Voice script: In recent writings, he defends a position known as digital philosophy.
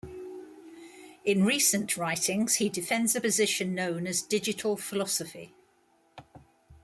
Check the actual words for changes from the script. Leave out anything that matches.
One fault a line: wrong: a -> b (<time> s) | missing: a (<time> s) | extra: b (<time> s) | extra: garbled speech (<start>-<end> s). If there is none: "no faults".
no faults